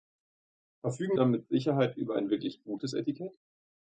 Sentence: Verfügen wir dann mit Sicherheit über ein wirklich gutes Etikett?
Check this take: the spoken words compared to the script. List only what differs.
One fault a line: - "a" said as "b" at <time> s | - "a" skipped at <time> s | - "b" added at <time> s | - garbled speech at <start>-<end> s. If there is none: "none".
- "wir" skipped at 1.2 s